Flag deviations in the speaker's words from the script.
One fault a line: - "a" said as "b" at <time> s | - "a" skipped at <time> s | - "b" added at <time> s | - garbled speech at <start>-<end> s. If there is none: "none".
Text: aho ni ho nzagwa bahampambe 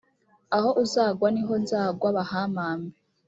- "uzagwa" added at 0.8 s